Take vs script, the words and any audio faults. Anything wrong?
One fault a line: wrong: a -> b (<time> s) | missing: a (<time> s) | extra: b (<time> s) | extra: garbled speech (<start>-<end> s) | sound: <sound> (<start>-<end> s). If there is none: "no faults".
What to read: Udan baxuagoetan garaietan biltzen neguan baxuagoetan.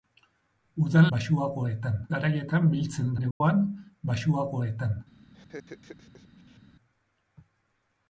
sound: dropout (3.3-3.4 s)
sound: laugh (5.3-6.6 s)